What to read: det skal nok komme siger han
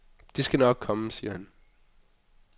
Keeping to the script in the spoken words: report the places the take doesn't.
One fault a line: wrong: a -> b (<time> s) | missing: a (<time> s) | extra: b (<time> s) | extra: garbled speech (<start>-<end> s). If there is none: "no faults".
no faults